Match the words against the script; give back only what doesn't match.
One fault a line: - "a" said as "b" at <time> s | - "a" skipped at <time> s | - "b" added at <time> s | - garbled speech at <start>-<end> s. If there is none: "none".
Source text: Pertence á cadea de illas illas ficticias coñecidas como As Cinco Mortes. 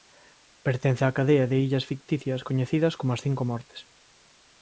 - "illas" skipped at 1.9 s